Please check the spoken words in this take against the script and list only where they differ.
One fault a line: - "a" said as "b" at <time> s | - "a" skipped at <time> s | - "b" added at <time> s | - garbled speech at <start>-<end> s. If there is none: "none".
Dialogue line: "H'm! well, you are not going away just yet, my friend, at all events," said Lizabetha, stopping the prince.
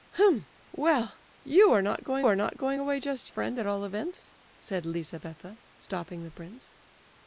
- "are not going" added at 2.2 s
- "yet my" skipped at 3.3 s